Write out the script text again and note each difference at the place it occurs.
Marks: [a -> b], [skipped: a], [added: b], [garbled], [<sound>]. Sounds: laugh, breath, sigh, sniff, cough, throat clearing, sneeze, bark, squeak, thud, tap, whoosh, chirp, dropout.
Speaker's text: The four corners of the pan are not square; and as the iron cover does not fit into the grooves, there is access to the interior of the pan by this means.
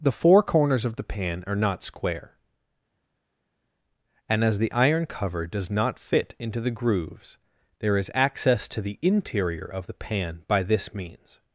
The four corners of the pan are not square; and as the iron cover does not fit into the grooves, there is access to the interior of the pan by this means.